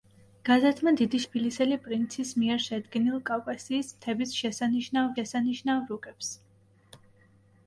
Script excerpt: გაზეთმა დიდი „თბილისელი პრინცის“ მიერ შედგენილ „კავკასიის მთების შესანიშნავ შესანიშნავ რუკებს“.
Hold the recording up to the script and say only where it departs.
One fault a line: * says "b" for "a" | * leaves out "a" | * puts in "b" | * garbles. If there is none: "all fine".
all fine